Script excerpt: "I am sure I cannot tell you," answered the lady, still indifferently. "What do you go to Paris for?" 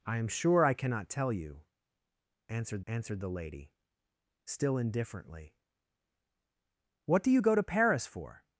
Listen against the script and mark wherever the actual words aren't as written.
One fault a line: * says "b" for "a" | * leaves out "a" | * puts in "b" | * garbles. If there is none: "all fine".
* puts in "answered"